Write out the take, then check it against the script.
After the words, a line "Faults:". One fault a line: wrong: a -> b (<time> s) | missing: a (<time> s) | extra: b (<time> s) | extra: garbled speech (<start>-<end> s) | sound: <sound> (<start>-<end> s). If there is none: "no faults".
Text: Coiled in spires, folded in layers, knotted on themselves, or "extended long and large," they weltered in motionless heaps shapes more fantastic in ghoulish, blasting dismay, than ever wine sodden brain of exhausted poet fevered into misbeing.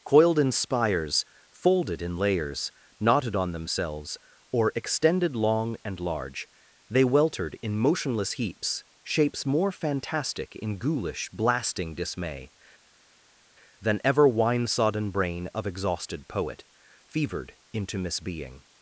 Coiled in spires, folded in layers, knotted on themselves, or "extended long and large," they weltered in motionless heaps shapes more fantastic in ghoulish, blasting dismay, than ever wine sodden brain of exhausted poet fevered into misbeing.
Faults:
no faults